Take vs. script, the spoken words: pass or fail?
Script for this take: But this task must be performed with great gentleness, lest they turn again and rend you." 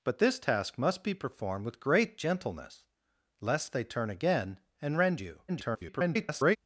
fail